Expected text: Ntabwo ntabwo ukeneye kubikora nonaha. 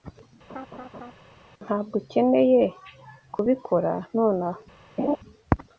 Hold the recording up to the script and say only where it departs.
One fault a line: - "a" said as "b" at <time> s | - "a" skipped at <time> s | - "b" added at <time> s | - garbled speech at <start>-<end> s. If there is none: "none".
- "ntabwo" skipped at 1.9 s